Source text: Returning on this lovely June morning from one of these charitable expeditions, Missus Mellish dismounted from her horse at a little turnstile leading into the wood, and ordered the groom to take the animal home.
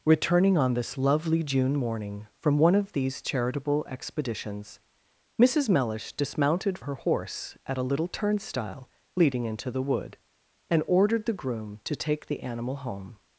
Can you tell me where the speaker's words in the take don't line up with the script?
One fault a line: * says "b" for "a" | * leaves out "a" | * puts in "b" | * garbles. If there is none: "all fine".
* leaves out "from"